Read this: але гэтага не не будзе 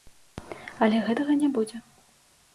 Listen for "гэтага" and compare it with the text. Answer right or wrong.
right